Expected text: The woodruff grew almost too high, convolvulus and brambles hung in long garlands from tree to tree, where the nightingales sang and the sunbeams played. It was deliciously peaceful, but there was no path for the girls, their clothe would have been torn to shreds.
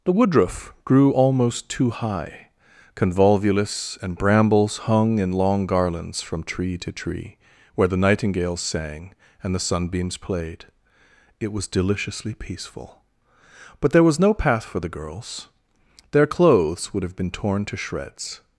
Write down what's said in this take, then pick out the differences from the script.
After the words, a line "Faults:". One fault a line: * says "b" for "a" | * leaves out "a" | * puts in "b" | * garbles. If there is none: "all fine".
The woodruff grew almost too high, convolvulus and brambles hung in long garlands from tree to tree, where the nightingales sang and the sunbeams played. It was deliciously peaceful, but there was no path for the girls, their clothes would have been torn to shreds.
Faults:
* says "clothes" for "clothe"